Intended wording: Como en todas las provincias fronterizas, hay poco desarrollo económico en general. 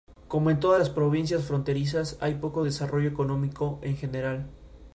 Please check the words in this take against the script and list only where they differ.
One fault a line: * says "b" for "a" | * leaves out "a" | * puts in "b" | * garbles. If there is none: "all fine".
all fine